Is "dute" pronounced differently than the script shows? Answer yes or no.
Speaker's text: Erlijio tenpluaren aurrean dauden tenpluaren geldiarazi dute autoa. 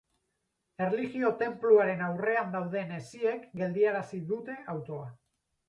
no